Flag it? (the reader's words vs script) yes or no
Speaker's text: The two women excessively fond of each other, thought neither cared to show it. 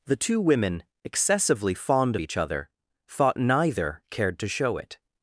no